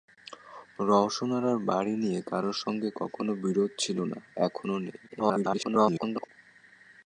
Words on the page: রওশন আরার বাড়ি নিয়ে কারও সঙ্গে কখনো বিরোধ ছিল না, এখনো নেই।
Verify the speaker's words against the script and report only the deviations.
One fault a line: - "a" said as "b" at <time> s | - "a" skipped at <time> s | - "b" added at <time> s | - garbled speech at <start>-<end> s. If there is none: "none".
- garbled speech at 5.1-6.3 s